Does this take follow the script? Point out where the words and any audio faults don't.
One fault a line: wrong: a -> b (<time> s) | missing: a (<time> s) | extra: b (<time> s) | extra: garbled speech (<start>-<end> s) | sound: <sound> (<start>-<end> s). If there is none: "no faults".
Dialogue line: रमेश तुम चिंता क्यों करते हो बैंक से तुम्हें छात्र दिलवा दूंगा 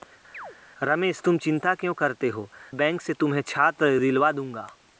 sound: chirp (0.3-0.6 s)